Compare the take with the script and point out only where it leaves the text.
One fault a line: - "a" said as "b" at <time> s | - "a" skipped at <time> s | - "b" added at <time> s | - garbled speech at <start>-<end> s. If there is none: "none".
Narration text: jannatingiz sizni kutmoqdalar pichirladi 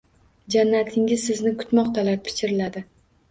none